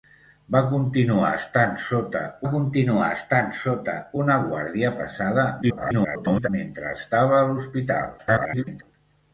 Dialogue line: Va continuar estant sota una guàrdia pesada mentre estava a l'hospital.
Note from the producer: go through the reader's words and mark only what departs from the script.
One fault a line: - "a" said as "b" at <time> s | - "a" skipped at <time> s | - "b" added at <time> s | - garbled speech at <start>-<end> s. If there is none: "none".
- "continuar estant sota" added at 2.5 s
- garbled speech at 5.6-6.5 s
- garbled speech at 8.2-8.8 s